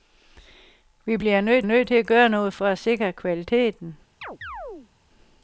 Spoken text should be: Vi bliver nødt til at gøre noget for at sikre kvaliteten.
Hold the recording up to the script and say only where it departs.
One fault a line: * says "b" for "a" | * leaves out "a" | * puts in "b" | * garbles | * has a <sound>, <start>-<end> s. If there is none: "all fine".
* puts in "nødt"
* has a chirp, 4.2-4.9 s